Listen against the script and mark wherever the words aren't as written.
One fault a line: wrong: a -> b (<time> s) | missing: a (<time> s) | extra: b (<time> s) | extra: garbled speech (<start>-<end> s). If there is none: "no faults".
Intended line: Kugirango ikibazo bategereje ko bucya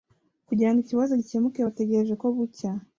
extra: gikemuke (1.2 s)